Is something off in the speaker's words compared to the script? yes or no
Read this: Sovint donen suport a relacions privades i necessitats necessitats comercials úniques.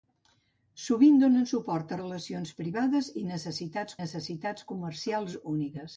no